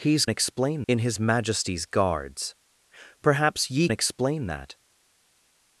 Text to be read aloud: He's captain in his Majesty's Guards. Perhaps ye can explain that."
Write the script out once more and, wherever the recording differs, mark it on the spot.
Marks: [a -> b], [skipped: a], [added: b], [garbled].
He's [captain -> explain] in his Majesty's Guards. Perhaps ye [skipped: can] explain that."